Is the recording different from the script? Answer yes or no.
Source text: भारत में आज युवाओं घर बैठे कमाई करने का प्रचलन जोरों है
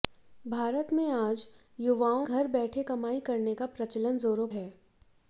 no